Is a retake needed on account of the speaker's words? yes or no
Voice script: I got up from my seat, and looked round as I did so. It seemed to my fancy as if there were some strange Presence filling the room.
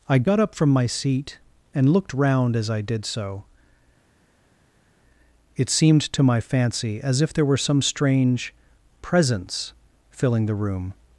no